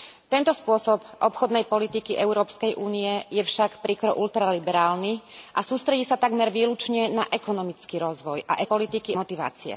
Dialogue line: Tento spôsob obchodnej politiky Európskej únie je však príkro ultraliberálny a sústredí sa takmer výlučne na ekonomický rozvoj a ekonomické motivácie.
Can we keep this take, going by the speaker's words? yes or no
no